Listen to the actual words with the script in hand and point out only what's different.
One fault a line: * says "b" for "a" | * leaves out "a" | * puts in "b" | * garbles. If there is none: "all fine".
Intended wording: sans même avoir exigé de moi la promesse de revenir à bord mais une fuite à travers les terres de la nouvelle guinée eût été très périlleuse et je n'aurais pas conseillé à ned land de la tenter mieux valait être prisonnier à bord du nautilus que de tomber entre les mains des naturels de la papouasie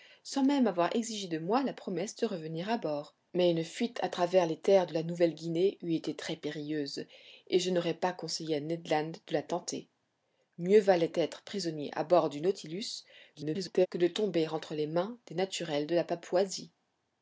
* garbles